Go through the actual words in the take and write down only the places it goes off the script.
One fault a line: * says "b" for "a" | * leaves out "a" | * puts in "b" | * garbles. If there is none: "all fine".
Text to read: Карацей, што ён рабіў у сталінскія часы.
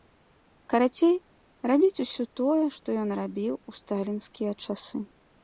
* puts in "рабіць усё тое"